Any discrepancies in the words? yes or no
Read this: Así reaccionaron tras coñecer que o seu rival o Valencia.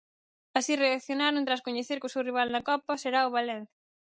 yes